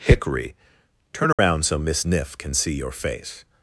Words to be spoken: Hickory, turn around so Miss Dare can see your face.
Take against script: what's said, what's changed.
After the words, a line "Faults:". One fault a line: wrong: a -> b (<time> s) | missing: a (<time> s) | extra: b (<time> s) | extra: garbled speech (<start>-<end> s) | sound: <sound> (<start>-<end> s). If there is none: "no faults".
Hickory, turn around so Miss Niff can see your face.
Faults:
sound: dropout (1.3-1.4 s)
wrong: Dare -> Niff (2.0 s)